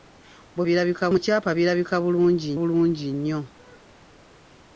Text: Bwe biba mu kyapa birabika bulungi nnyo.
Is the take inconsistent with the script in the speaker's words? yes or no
yes